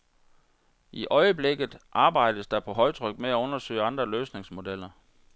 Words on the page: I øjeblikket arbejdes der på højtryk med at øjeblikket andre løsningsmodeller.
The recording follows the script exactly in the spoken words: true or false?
false